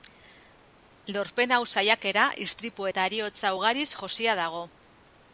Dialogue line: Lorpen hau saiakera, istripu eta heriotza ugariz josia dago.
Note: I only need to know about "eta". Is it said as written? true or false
true